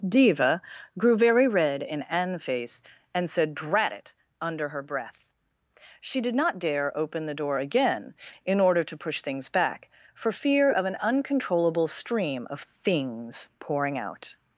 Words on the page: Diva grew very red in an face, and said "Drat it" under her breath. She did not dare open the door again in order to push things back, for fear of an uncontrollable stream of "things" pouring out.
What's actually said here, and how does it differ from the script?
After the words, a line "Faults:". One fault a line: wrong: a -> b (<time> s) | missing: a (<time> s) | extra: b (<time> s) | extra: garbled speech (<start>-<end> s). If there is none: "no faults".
Diva grew very red in an face, and said "Drat it" under her breath. She did not dare open the door again in order to push things back, for fear of an uncontrollable stream of "things" pouring out.
Faults:
no faults